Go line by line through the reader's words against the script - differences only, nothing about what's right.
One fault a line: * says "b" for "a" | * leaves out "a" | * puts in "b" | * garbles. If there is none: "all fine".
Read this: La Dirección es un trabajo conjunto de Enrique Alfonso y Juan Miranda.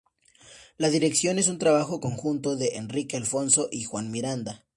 all fine